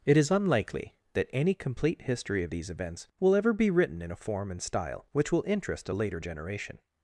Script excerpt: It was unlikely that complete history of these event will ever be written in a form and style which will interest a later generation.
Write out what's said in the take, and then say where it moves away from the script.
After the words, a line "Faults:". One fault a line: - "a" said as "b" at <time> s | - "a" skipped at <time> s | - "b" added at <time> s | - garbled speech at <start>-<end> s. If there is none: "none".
It is unlikely that any complete history of these events will ever be written in a form and style which will interest a later generation.
Faults:
- "was" said as "is" at 0.2 s
- "any" added at 1.3 s
- "event" said as "events" at 2.7 s